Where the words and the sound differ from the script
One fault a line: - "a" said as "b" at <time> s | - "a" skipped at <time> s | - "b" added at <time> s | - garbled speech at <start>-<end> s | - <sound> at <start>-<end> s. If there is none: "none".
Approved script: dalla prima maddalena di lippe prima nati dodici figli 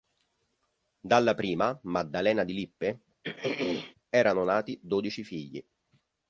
- throat clearing at 3.2-4.0 s
- "prima" said as "erano" at 4.1 s